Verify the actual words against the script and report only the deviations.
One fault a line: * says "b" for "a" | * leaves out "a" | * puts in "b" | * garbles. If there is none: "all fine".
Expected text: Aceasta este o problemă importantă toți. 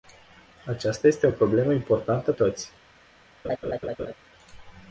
all fine